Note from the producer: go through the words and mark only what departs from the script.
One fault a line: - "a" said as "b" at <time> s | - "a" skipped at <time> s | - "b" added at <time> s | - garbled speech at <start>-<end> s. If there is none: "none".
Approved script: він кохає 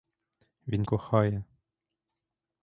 none